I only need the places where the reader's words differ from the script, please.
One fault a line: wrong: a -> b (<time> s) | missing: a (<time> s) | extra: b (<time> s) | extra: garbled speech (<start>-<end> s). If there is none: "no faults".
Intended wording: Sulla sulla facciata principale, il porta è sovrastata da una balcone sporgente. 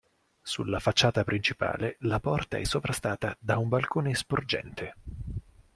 missing: sulla (0.8 s)
wrong: il -> la (2.0 s)
wrong: una -> un (3.6 s)